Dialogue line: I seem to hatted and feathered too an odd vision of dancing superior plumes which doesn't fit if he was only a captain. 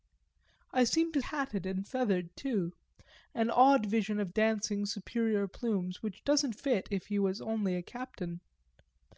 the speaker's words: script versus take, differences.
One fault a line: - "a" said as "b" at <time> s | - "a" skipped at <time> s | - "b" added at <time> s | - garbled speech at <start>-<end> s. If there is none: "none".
none